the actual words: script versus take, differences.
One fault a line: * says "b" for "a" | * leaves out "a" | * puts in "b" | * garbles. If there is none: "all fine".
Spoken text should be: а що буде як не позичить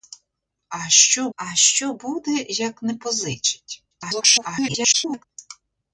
* puts in "а що"
* garbles